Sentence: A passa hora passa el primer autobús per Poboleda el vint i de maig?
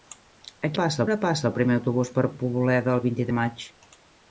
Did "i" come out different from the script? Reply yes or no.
no